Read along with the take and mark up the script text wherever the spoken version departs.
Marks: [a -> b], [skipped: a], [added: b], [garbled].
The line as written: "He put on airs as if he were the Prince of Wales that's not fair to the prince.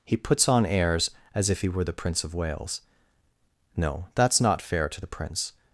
"He [put -> puts] on airs as if he were the Prince of Wales [added: no] that's not fair to the prince.